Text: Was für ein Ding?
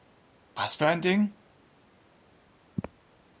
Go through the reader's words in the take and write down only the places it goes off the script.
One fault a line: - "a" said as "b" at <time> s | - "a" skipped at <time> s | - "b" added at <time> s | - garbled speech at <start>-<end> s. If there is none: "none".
none